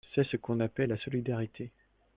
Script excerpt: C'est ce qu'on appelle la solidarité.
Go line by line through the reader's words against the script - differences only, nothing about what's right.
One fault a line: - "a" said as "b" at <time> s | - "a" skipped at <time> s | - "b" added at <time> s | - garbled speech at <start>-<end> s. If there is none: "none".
none